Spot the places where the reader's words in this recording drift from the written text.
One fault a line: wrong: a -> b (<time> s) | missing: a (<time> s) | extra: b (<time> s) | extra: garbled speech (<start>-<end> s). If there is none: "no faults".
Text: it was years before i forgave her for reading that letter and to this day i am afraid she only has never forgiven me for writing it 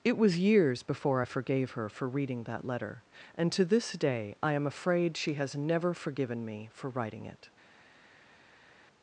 missing: only (5.3 s)